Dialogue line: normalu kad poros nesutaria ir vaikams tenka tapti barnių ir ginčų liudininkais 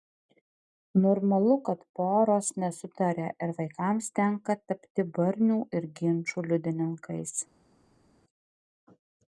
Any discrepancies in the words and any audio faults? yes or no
no